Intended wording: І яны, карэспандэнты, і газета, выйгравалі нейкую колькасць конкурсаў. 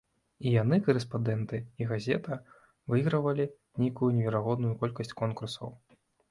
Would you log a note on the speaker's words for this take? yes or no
yes